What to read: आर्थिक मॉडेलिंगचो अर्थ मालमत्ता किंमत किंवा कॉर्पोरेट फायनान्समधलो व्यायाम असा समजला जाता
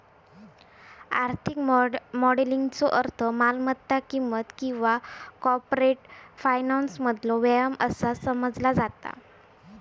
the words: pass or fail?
pass